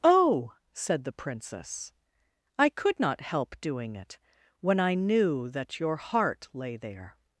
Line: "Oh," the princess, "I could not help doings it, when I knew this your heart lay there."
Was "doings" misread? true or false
true